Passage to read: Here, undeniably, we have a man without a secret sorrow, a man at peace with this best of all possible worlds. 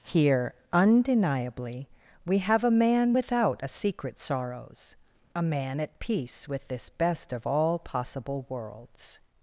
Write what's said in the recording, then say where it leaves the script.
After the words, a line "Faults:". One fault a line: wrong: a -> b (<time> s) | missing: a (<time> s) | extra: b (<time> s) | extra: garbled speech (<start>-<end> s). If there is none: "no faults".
Here, undeniably, we have a man without a secret sorrows, a man at peace with this best of all possible worlds.
Faults:
wrong: sorrow -> sorrows (4.2 s)